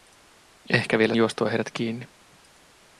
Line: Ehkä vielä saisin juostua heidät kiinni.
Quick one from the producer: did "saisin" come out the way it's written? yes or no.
no